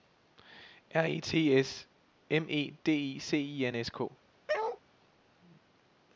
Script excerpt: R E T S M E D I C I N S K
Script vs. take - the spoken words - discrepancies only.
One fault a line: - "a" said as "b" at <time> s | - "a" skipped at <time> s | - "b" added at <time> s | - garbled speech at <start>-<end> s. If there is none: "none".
none